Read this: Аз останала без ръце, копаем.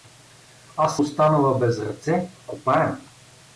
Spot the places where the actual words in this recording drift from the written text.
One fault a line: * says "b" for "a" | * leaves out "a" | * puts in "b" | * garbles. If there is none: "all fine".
all fine